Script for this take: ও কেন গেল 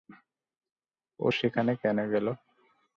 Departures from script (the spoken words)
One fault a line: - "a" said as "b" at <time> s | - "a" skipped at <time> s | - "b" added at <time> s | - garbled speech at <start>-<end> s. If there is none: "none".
- "সেখানে" added at 1.3 s